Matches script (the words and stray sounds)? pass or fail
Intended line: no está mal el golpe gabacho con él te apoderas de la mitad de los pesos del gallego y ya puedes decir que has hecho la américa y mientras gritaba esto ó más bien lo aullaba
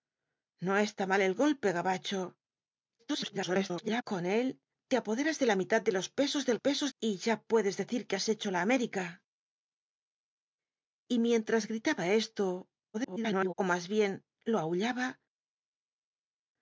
fail